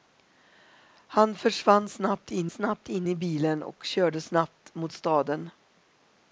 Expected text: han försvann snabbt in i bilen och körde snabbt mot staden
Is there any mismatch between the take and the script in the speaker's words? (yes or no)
yes